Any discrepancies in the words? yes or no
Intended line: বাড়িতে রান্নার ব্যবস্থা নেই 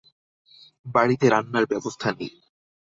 no